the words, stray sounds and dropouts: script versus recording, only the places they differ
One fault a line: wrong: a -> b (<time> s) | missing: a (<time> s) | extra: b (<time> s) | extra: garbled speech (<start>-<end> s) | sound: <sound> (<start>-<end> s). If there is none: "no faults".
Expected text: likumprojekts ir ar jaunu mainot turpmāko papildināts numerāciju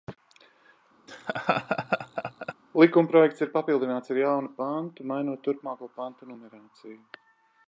sound: laugh (1.1-2.5 s)
extra: papildināts (3.6 s)
extra: pantu (4.6 s)
wrong: papildināts -> pantu (6.0 s)